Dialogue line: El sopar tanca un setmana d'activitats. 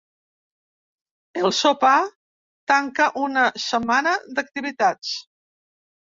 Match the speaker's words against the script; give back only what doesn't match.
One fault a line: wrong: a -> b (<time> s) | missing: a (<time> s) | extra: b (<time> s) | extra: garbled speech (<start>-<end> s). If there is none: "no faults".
wrong: un -> una (3.3 s)